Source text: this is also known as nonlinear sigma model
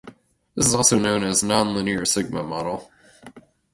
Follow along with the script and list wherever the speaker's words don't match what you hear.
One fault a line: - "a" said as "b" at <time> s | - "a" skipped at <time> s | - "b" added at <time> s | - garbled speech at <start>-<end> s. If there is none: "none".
none